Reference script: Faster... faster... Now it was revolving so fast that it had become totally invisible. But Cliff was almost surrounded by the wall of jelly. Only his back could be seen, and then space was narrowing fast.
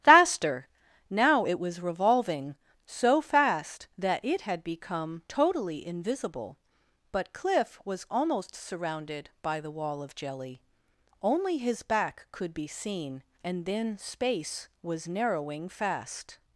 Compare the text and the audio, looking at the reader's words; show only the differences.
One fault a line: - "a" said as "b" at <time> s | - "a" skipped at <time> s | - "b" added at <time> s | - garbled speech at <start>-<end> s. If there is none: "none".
- "faster" skipped at 0.7 s